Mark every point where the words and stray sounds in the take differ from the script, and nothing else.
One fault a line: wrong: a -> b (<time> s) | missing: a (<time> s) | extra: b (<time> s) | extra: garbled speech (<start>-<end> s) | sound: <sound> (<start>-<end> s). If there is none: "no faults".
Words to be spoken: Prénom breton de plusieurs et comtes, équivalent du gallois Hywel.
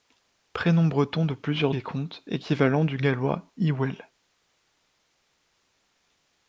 no faults